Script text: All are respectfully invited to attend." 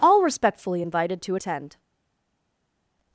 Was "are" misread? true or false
true